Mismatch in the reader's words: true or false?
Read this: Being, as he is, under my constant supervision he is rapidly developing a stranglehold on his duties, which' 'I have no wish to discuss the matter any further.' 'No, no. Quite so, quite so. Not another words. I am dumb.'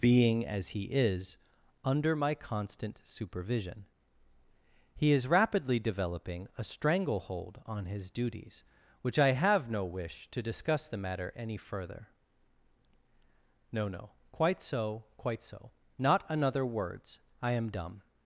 false